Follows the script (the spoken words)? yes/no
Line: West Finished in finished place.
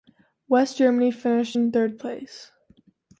no